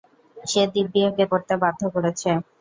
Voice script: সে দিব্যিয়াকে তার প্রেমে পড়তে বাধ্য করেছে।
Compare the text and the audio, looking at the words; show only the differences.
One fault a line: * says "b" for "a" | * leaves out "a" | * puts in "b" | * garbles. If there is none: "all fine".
* leaves out "তার প্রেমে"